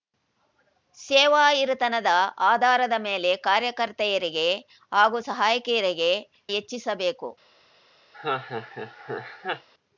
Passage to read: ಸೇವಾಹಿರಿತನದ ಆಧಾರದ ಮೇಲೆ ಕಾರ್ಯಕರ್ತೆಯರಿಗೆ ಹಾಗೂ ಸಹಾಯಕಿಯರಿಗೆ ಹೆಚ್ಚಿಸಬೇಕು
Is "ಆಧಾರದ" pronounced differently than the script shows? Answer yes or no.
no